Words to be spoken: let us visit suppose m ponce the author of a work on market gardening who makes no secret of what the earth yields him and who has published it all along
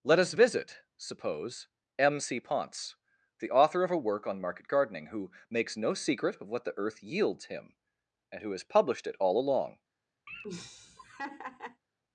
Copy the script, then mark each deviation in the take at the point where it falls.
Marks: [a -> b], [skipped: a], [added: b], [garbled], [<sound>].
let us visit suppose m [added: c] ponce the author of a work on market gardening who makes no secret of what the earth yields him and who has published it all along [laugh]